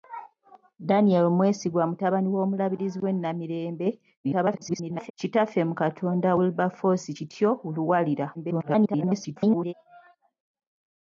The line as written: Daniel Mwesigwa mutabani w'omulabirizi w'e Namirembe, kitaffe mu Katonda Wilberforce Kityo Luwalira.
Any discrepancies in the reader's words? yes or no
yes